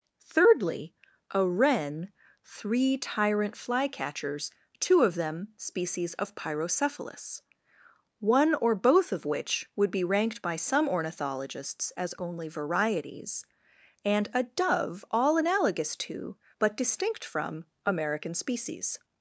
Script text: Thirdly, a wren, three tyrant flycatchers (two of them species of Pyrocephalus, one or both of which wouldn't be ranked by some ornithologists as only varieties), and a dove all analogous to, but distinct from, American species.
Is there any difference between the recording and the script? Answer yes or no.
yes